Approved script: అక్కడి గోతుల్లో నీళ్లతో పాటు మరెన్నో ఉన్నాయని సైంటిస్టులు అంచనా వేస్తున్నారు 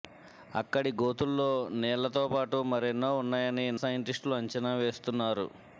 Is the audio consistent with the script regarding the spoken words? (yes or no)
yes